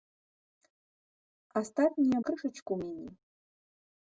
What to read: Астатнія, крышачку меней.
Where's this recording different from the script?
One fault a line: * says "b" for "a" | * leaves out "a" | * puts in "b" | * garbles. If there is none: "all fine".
all fine